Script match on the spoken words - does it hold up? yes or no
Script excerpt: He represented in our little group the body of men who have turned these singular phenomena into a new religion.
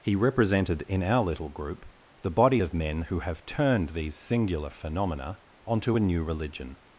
no